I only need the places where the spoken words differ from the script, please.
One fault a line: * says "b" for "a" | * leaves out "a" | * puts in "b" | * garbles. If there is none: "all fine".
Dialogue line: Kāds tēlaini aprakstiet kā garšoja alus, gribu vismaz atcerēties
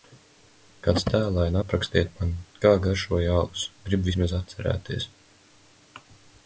* puts in "man"